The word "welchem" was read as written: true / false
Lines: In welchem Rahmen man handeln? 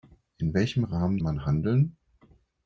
true